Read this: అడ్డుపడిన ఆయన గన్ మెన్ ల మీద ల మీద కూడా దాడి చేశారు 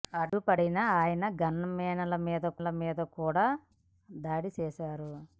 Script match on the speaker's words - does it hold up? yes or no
yes